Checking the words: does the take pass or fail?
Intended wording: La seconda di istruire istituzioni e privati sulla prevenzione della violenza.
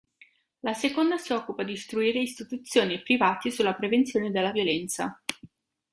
fail